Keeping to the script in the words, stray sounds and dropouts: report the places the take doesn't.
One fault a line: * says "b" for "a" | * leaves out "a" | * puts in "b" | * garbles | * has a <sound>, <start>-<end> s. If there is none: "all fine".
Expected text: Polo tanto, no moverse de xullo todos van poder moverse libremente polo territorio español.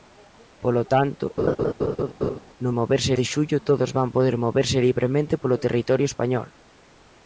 * has a laugh, 1.4-2.4 s